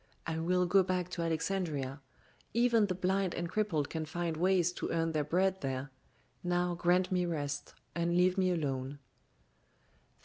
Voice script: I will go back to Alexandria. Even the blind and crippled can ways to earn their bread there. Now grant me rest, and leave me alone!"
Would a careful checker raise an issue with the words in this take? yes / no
yes